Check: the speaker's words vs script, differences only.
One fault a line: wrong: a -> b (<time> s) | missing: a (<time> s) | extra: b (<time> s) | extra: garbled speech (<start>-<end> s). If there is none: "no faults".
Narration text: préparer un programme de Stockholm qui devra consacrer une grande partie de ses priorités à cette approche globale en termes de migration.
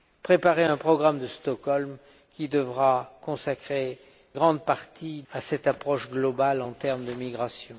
missing: une (4.0 s)
missing: de ses priorités (5.2 s)